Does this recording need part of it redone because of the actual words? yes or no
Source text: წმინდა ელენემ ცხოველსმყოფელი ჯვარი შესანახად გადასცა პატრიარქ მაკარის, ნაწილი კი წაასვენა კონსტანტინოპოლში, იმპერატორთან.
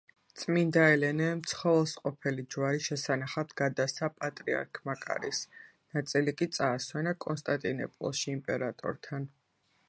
no